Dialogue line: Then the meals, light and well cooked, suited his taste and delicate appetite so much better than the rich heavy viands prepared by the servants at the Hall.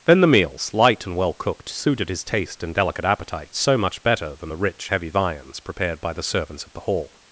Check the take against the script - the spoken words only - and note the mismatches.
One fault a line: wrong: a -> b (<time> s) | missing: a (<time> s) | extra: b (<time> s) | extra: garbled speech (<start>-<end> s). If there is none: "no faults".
no faults